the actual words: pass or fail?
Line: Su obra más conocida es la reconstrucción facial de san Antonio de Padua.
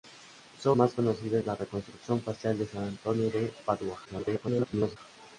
fail